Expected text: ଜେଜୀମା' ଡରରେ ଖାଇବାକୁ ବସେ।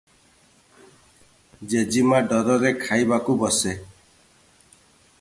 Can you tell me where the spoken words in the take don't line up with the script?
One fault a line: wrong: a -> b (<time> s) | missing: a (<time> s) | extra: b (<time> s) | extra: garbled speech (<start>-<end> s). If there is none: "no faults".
no faults